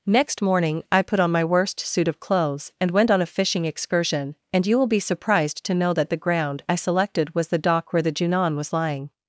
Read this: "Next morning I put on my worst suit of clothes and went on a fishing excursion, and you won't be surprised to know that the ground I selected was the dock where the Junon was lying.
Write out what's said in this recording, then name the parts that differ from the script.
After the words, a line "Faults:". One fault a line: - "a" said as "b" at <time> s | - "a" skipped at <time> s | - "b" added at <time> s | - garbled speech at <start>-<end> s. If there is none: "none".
"Next morning I put on my worst suit of clothes and went on a fishing excursion, and you will be surprised to know that the ground I selected was the dock where the Junon was lying.
Faults:
- "won't" said as "will" at 4.8 s